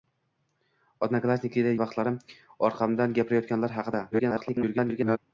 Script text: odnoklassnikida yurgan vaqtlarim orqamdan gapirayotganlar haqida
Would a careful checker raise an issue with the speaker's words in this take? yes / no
yes